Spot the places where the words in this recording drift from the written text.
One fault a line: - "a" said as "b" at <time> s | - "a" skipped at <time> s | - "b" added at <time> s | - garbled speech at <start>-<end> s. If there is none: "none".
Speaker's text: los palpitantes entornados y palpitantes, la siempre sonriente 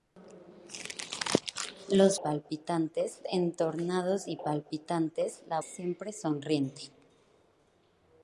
none